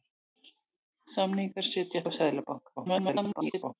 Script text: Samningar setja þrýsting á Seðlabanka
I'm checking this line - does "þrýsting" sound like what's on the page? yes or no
no